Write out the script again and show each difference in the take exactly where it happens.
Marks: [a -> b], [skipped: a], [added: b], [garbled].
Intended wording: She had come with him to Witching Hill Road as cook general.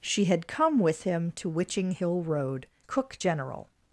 She had come with him to Witching Hill Road [skipped: as] cook general.